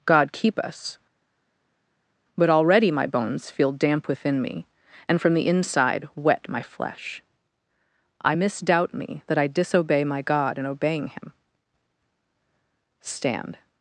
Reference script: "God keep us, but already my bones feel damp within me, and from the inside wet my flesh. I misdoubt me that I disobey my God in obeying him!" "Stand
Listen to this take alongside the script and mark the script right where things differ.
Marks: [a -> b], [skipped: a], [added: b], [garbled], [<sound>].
"God keep us, but already my bones feel damp within me, and from the inside wet my flesh. I misdoubt me that I disobey my God in obeying him!" "Stand